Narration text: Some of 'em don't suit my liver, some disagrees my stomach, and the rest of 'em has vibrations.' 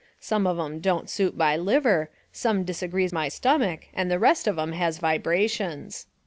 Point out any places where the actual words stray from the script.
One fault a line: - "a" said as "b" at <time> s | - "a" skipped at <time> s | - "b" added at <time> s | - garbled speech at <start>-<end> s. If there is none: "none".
none